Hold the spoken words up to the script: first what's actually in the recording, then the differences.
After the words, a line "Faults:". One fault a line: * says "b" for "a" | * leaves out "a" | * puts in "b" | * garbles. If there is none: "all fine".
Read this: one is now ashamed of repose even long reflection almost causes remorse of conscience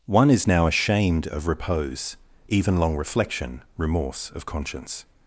one is now ashamed of repose even long reflection remorse of conscience
Faults:
* leaves out "almost causes"